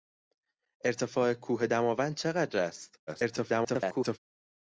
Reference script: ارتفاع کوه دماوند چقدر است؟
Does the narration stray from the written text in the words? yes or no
yes